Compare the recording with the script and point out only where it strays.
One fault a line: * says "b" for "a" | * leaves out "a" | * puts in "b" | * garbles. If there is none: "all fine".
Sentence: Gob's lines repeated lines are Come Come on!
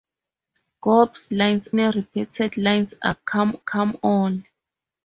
all fine